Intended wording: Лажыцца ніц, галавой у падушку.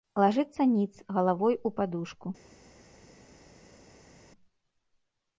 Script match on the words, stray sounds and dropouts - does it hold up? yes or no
yes